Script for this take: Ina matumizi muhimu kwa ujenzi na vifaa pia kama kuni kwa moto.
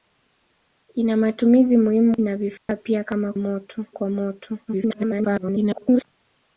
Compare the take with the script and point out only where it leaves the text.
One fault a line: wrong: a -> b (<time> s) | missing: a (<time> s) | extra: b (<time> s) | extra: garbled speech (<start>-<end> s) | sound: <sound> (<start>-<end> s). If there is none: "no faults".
missing: kwa ujenzi (2.2 s)
sound: dropout (2.6-2.7 s)
wrong: kuni -> moto (3.4 s)
extra: garbled speech (4.7-6.0 s)